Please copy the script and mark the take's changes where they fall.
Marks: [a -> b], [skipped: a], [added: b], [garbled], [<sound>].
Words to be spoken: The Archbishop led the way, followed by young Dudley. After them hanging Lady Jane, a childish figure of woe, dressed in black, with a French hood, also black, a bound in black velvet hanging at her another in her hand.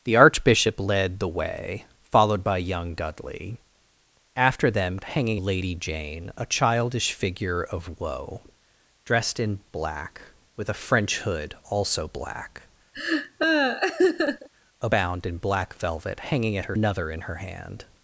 The Archbishop led the way, followed by young Dudley. After them hanging Lady Jane, a childish figure of woe, dressed in black, with a French hood, also black, [laugh] a bound in black velvet hanging at her another in her hand.